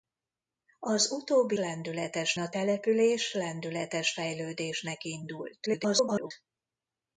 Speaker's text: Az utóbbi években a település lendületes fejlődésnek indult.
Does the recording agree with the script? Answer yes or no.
no